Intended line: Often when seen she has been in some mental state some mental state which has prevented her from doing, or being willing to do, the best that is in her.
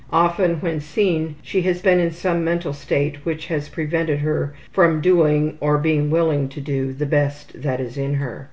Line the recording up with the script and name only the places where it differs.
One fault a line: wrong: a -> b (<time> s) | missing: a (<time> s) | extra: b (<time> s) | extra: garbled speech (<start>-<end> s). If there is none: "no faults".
missing: some mental state (3.2 s)